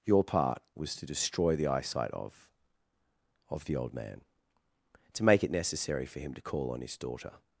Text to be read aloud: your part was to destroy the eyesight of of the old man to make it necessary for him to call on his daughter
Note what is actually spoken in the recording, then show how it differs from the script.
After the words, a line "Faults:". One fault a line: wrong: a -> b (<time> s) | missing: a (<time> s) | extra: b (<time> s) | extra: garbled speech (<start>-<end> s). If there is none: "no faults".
your part was to destroy the eyesight of of the old man to make it necessary for him to call on his daughter
Faults:
no faults